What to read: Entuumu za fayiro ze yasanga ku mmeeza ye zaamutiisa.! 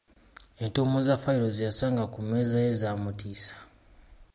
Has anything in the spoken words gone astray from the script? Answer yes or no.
no